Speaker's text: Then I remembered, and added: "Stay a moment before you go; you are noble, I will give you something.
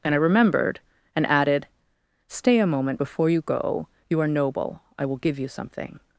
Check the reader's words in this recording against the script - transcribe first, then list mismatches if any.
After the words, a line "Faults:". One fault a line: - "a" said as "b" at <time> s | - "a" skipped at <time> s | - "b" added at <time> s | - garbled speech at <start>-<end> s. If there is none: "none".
And I remembered, and added: "Stay a moment before you go; you are noble, I will give you something.
Faults:
- "Then" said as "And" at 0.0 s